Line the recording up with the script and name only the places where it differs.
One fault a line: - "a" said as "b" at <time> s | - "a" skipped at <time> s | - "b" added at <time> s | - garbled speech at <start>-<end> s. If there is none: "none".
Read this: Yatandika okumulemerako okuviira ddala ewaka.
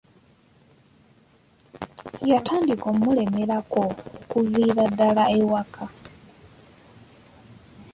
none